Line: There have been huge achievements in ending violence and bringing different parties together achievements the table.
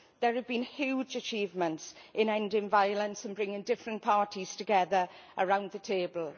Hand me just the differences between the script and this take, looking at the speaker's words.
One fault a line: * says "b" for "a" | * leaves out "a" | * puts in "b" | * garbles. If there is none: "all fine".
* says "around" for "achievements"